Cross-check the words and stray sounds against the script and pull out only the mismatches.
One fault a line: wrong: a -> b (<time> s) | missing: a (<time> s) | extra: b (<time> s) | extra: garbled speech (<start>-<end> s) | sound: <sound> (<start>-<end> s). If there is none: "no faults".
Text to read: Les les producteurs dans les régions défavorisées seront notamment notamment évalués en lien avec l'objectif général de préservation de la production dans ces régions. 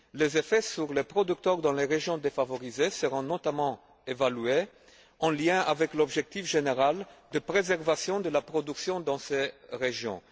extra: effets sur (0.4 s)
missing: notamment (3.8 s)